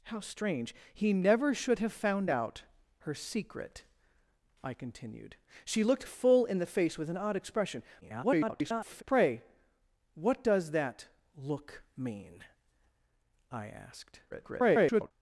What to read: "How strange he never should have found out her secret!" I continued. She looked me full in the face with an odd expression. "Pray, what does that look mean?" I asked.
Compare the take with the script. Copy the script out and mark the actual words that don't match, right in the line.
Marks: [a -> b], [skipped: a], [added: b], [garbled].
"How strange he never should have found out her secret!" I continued. She looked [skipped: me] full in the face with an odd expression. [garbled] "Pray, what does that look mean?" I asked. [garbled]